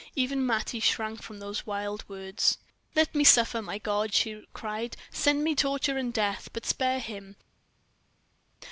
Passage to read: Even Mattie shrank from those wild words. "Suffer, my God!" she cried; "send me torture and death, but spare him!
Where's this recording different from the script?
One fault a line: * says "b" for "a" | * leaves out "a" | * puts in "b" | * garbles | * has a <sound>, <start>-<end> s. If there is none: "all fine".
* puts in "Let me"